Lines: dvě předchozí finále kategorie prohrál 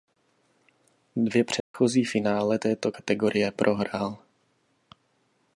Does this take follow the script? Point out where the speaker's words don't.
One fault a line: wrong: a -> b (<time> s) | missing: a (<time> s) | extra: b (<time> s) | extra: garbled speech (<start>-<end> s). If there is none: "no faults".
extra: této (2.6 s)